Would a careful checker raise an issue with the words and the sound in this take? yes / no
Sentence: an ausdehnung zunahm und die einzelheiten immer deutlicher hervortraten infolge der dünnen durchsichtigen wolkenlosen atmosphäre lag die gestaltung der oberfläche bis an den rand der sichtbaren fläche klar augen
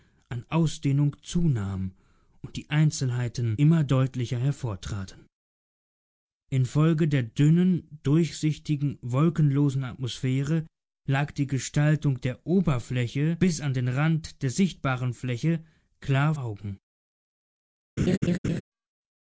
yes